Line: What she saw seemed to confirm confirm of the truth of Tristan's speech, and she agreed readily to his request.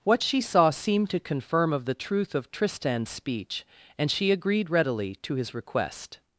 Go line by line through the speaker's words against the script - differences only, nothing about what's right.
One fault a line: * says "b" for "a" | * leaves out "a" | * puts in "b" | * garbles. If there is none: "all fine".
* leaves out "confirm"